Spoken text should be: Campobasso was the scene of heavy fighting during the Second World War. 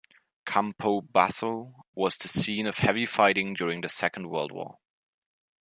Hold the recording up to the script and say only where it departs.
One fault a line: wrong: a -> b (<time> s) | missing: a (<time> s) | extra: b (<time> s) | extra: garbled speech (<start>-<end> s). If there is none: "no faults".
no faults